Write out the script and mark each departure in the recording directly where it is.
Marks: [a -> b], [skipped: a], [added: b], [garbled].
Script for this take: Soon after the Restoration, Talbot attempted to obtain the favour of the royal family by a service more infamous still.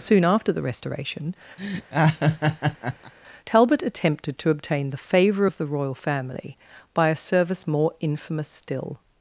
Soon after the Restoration, Talbot attempted to obtain the favour of the royal family by a service more infamous still.